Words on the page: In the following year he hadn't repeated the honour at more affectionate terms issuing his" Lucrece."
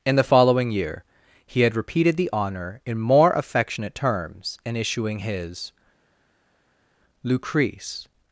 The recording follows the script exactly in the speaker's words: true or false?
false